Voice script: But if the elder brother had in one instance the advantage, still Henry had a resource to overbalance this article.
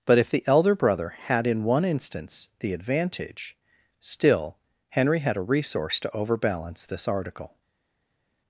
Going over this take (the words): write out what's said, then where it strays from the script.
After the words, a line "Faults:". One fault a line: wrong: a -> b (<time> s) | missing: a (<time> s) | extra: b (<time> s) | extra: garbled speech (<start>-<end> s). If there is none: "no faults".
But if the elder brother had in one instance the advantage, still Henry had a resource to overbalance this article.
Faults:
no faults